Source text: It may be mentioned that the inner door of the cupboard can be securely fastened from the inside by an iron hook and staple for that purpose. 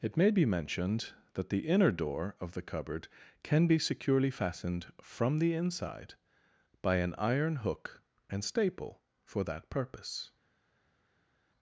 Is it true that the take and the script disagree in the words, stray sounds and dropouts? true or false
false